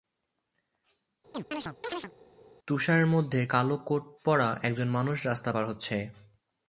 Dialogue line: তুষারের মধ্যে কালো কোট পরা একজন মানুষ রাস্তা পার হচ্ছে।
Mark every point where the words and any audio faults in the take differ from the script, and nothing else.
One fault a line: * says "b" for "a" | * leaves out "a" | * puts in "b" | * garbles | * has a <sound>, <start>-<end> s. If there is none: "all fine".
* has a chirp, 1.3-2.1 s